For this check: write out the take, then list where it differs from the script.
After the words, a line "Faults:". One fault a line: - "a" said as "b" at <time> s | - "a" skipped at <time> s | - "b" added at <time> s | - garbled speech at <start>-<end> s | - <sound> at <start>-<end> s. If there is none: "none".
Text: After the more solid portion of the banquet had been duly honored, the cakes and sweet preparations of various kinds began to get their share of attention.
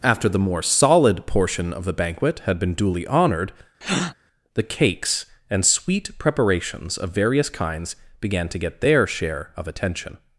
After the more solid portion of the banquet had been duly honored, the cakes and sweet preparations of various kinds began to get their share of attention.
Faults:
- breath at 3.8-4.1 s